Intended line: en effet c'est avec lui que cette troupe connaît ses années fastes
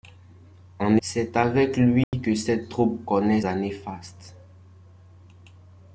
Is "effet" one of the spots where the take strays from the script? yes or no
yes